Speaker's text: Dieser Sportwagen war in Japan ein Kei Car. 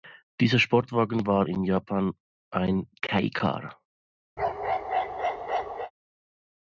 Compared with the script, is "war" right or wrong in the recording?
right